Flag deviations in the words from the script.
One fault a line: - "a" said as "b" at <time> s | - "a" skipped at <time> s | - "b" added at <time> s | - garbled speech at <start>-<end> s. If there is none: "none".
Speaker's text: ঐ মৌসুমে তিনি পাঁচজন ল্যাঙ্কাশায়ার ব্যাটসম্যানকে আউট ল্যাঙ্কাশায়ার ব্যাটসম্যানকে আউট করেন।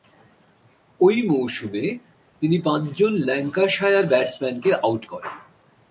- "ল্যাঙ্কাশায়ার ব্যাটসম্যানকে আউট" skipped at 5.0 s